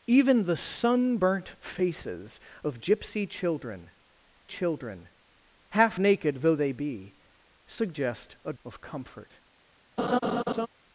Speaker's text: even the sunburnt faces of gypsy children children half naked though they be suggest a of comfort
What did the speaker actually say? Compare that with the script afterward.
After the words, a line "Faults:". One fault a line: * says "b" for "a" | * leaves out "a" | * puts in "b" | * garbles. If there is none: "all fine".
even the sunburnt faces of gypsy children children half naked though they be suggest a of comfort
Faults:
all fine